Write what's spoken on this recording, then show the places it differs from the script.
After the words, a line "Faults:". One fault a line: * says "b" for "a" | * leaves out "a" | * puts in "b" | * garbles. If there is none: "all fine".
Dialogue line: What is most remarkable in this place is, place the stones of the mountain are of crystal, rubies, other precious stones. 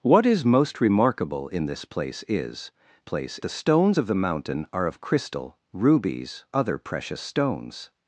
What is most remarkable in this place is, place the stones of the mountain are of crystal, rubies, other precious stones.
Faults:
all fine